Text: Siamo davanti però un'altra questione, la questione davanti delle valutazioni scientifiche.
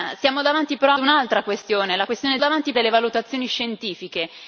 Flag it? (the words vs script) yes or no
no